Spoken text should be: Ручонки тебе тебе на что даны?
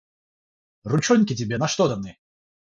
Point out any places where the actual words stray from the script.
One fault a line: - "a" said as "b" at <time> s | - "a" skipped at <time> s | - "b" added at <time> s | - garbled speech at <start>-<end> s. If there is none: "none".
- "тебе" skipped at 1.6 s